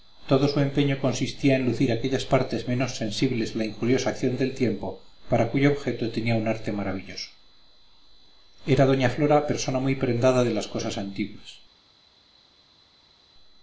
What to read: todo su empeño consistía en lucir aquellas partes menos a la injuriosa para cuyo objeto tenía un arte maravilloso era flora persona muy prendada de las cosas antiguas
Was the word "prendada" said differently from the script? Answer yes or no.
no